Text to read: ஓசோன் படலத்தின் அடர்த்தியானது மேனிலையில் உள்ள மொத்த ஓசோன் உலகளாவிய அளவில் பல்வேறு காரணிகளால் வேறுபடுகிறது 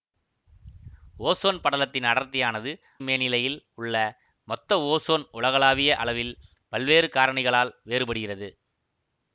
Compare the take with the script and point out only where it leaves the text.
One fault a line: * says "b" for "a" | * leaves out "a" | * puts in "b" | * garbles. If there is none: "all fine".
all fine